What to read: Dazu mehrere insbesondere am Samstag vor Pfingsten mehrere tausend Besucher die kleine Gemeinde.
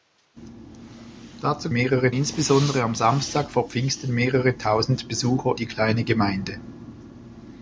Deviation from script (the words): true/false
false